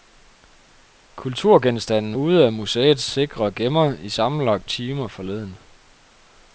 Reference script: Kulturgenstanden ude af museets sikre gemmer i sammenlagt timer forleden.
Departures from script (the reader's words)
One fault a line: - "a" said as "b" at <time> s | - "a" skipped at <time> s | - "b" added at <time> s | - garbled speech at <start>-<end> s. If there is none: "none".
none